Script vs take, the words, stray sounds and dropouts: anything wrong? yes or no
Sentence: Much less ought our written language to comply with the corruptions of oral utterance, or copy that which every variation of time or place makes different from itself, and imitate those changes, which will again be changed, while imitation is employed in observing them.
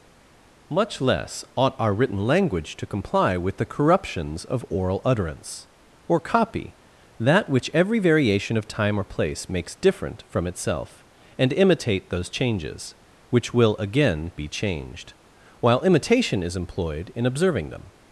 no